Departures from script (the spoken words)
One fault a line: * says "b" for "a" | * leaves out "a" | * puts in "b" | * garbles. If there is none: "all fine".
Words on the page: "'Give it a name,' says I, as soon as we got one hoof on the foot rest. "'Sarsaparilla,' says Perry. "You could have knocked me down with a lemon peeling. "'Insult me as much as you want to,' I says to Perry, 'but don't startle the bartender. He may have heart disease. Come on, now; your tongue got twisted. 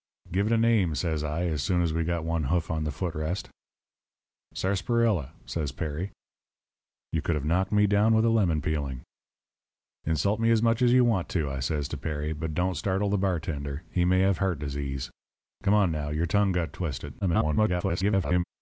* garbles